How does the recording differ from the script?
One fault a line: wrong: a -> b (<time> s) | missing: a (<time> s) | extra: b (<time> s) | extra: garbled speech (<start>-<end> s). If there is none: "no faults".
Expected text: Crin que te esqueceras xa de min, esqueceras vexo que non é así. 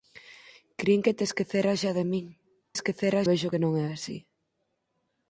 no faults